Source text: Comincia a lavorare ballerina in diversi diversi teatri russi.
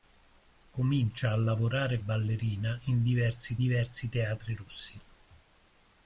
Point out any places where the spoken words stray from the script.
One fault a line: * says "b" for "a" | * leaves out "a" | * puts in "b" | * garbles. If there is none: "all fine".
all fine